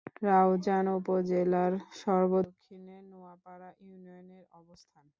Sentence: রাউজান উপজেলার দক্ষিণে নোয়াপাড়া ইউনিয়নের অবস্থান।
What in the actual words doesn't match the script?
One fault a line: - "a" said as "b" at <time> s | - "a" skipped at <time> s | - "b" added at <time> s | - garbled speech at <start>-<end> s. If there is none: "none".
- "সর্ব" added at 2.0 s